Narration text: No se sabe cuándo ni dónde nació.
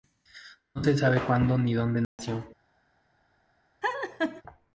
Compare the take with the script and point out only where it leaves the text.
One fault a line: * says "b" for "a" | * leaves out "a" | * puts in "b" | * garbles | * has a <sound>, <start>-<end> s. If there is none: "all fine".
* has a dropout, 2.0-2.2 s
* has a laugh, 3.8-4.4 s